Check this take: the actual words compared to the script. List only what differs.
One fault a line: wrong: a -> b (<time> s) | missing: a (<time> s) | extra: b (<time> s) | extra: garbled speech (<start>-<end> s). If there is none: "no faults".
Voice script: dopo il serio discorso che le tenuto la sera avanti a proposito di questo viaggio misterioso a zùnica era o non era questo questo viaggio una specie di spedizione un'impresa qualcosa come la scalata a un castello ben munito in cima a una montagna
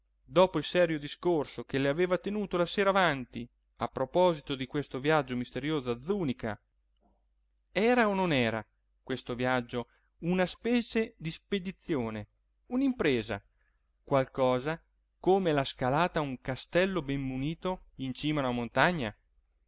extra: aveva (1.9 s)
missing: questo (9.3 s)